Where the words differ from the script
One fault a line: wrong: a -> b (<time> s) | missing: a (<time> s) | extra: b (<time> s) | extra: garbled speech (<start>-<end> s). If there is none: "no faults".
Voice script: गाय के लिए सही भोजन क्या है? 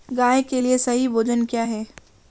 no faults